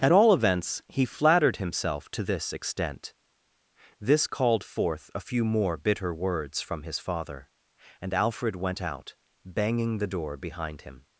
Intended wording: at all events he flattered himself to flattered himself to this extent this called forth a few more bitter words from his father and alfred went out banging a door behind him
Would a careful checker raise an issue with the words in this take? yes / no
yes